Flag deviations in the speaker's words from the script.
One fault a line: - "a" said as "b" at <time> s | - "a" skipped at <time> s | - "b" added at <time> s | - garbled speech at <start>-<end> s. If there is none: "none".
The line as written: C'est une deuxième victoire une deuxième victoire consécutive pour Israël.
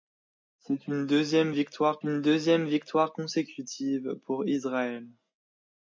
none